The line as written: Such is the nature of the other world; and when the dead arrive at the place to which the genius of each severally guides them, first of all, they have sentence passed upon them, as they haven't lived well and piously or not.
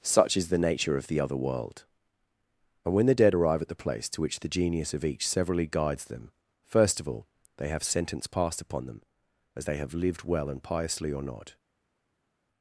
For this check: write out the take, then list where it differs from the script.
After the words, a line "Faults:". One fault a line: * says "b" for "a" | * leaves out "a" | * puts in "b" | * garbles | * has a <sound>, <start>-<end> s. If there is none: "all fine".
Such is the nature of the other world; and when the dead arrive at the place to which the genius of each severally guides them, first of all, they have sentence passed upon them, as they have lived well and piously or not.
Faults:
* says "have" for "haven't"